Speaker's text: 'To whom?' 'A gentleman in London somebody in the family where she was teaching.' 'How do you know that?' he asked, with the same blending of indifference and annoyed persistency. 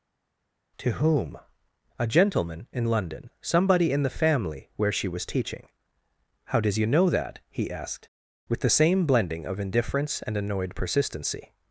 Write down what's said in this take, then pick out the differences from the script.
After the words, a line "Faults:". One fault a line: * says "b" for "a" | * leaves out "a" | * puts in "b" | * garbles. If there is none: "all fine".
'To whom?' 'A gentleman in London somebody in the family where she was teaching.' 'How does you know that?' he asked, with the same blending of indifference and annoyed persistency.
Faults:
* says "does" for "do"